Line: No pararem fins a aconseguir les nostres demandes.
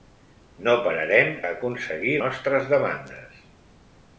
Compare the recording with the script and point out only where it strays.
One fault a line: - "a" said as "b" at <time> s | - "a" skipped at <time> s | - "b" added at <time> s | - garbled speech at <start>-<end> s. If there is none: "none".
- "fins" skipped at 1.3 s
- "les" skipped at 2.2 s